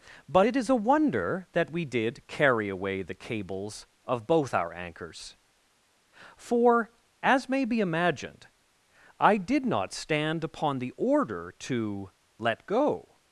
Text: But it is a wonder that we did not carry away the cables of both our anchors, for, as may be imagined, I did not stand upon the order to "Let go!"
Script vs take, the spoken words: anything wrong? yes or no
yes